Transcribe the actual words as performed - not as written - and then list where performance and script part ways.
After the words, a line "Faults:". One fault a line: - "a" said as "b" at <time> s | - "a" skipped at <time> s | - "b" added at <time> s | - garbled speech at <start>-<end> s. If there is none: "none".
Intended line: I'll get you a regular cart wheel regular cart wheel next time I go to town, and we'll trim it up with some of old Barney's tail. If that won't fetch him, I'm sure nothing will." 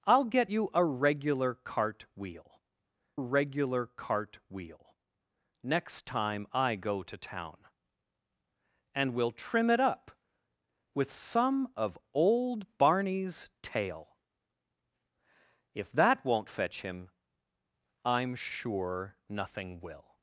I'll get you a regular cart wheel regular cart wheel next time I go to town, and we'll trim it up with some of old Barney's tail. If that won't fetch him, I'm sure nothing will."
Faults:
none